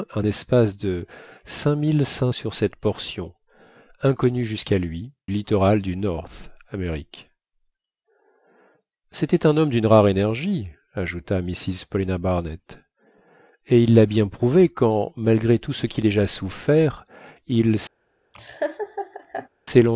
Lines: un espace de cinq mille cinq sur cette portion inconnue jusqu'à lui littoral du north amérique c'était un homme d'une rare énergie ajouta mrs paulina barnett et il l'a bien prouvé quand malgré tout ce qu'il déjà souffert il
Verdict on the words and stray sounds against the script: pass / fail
fail